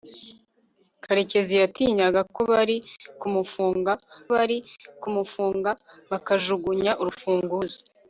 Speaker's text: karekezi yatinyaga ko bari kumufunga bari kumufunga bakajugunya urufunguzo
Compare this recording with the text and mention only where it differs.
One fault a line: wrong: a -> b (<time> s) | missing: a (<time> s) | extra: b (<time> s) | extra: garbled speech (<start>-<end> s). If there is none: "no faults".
no faults